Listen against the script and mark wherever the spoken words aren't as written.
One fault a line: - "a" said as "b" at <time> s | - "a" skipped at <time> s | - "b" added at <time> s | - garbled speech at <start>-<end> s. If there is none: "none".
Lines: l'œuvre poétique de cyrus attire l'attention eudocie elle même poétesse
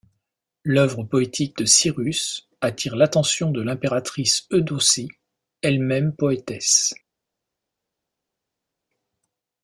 - "de l'impératrice" added at 3.5 s